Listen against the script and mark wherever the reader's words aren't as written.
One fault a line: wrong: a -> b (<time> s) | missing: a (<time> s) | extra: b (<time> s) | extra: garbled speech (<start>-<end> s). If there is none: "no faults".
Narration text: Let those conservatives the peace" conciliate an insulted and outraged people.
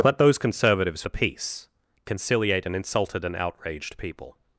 no faults